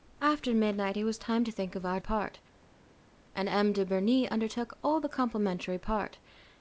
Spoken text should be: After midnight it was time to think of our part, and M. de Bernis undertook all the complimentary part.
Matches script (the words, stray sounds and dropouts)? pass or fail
pass